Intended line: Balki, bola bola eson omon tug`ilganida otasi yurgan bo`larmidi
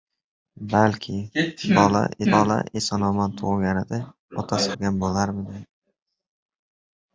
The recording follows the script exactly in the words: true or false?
true